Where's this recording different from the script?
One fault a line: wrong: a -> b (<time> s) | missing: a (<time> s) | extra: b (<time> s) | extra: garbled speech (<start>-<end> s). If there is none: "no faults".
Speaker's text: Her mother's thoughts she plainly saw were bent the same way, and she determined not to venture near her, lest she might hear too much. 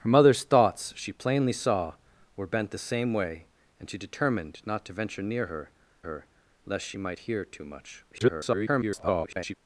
extra: her (6.0 s)
extra: garbled speech (8.1-9.6 s)